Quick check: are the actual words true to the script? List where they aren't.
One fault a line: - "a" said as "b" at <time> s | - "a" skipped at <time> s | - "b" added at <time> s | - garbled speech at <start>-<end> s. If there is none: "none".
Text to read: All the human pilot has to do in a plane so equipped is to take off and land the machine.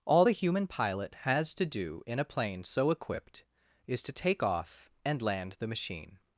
none